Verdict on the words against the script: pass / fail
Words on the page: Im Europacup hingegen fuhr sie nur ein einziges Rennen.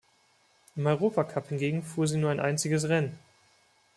pass